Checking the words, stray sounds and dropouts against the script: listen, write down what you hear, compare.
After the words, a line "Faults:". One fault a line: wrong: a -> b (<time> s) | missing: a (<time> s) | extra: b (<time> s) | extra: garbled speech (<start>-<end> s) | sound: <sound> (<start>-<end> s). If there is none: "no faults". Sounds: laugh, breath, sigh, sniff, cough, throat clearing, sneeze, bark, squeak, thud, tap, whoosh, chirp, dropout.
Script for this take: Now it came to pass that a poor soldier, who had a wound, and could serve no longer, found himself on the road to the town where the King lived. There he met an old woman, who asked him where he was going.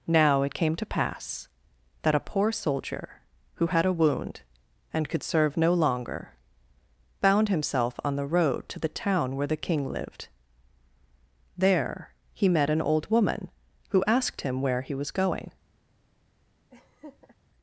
Now it came to pass that a poor soldier, who had a wound, and could serve no longer, found himself on the road to the town where the King lived. There he met an old woman, who asked him where he was going.
Faults:
sound: laugh (16.7-17.4 s)